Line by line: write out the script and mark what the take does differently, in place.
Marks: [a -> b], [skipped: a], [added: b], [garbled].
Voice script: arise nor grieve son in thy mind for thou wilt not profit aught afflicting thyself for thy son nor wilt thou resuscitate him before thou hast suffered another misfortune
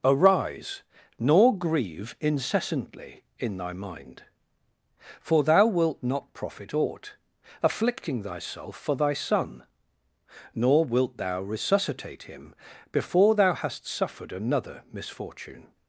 arise nor grieve [son -> incessantly] in thy mind for thou wilt not profit aught afflicting thyself for thy son nor wilt thou resuscitate him before thou hast suffered another misfortune